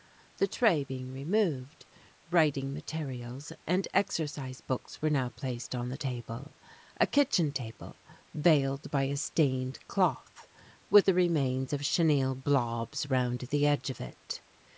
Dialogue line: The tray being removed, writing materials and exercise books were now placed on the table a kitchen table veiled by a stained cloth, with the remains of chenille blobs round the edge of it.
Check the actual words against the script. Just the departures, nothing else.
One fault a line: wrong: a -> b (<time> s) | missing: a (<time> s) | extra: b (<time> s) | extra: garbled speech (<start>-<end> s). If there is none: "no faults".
no faults